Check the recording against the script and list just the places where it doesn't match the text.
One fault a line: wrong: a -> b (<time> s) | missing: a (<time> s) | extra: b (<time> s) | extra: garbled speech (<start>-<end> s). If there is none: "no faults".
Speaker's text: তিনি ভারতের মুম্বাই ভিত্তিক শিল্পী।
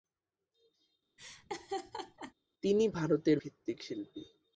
missing: মুম্বাই (3.4 s)